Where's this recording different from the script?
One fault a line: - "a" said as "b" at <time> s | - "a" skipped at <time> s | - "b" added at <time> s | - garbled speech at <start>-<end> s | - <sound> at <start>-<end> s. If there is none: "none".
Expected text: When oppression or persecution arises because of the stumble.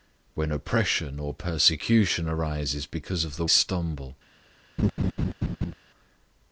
- laugh at 4.8-5.7 s